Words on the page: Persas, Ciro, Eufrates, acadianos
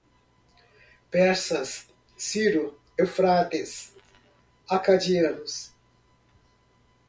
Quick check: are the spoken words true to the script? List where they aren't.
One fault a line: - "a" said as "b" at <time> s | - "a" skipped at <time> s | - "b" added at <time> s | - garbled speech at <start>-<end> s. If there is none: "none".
none